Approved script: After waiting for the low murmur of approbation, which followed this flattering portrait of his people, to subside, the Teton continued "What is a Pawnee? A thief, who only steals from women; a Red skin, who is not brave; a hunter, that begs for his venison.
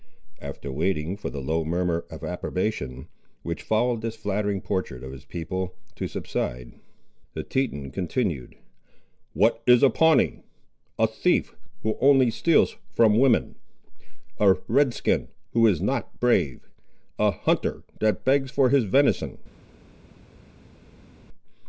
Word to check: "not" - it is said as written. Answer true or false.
true